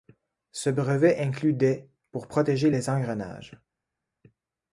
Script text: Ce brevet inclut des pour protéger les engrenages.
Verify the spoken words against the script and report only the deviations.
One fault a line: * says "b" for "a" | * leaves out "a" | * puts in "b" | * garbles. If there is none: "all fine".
all fine